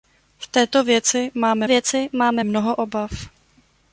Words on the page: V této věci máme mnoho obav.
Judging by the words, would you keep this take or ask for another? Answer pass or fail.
fail